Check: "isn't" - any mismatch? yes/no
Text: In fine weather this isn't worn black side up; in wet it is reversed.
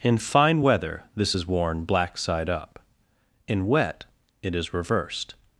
yes